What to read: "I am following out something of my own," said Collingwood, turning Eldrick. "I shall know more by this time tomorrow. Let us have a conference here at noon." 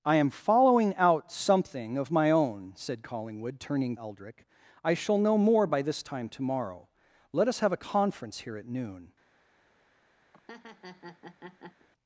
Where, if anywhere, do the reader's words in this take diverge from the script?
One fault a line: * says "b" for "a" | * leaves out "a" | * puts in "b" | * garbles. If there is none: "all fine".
all fine